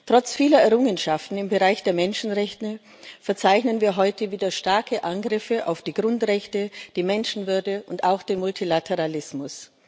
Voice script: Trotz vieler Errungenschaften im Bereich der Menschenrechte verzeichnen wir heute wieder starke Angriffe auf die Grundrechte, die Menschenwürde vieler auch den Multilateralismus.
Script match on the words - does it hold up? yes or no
no